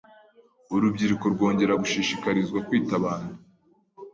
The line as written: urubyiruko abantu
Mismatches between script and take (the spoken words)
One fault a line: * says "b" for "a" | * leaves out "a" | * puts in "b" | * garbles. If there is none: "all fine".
* puts in "rwongera gushishikarizwa kwita"